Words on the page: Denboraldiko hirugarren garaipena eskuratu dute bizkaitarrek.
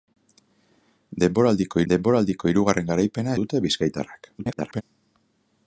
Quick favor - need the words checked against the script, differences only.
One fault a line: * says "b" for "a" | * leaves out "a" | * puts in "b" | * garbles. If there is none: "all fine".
* puts in "denboraldiko"
* leaves out "eskuratu"
* garbles